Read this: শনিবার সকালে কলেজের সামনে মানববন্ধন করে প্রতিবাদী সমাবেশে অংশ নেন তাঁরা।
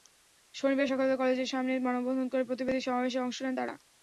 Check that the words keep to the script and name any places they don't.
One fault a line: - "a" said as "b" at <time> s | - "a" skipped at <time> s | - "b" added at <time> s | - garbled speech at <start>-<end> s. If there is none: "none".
none